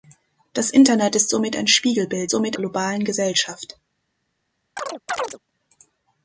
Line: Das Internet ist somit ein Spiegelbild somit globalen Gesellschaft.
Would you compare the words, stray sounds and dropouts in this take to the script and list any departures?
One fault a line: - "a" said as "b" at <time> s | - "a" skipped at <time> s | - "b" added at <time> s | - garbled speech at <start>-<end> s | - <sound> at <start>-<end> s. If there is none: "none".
- chirp at 4.8-5.4 s